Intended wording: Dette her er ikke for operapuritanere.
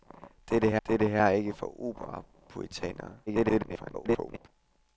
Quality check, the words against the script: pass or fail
fail